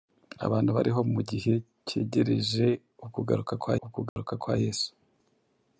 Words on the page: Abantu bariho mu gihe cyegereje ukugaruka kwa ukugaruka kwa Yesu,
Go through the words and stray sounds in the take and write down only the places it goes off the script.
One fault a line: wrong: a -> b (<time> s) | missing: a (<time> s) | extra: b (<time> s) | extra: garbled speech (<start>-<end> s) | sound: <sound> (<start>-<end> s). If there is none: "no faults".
sound: dropout (4.1-4.2 s)